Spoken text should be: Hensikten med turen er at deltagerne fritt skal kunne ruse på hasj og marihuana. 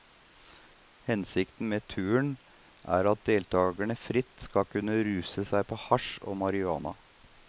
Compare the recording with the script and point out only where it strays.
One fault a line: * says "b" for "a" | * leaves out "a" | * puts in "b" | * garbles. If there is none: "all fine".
* puts in "seg"